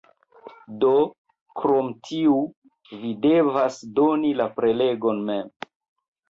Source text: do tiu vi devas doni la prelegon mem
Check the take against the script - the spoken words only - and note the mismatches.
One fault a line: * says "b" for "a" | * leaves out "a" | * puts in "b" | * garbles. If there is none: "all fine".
* puts in "krom"